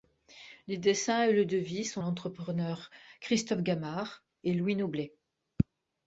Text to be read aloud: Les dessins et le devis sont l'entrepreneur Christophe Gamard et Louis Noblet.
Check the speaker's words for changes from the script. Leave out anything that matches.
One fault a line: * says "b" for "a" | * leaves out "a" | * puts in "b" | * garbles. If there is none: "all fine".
all fine